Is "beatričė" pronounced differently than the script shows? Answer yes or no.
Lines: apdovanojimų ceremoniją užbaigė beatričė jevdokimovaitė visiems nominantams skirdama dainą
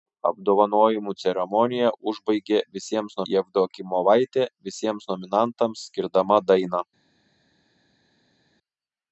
yes